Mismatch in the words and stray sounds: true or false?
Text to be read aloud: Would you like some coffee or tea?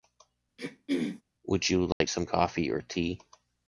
true